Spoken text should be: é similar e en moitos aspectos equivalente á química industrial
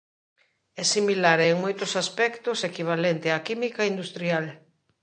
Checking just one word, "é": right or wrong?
right